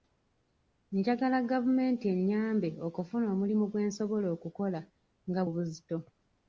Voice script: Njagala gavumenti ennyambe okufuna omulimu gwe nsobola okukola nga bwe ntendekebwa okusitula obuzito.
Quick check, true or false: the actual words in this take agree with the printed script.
false